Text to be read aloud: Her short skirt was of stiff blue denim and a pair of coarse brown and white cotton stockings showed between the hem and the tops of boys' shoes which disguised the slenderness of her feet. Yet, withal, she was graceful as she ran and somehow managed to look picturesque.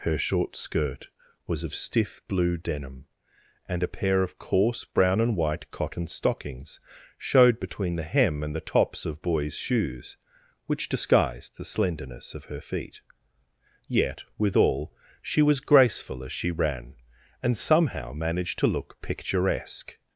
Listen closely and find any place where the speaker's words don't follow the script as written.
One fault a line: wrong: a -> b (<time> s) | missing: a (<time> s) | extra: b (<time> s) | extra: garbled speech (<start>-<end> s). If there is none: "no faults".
no faults